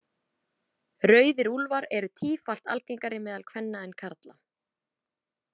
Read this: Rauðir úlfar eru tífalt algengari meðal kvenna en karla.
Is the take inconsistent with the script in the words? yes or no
no